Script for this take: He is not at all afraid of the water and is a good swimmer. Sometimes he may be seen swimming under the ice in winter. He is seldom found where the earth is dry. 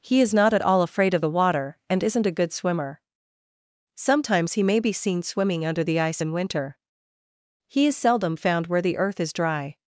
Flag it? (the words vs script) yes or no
yes